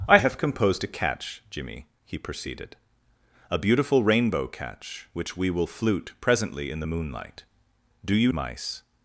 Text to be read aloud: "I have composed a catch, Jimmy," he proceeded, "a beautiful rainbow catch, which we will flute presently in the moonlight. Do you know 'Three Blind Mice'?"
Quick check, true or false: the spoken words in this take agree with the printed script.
false